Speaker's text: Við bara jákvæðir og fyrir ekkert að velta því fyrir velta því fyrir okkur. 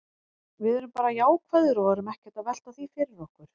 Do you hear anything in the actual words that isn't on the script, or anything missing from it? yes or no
yes